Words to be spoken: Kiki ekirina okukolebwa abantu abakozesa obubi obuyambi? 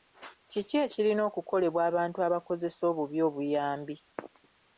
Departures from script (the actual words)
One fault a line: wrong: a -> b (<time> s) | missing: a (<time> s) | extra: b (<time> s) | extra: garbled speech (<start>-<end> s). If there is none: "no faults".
no faults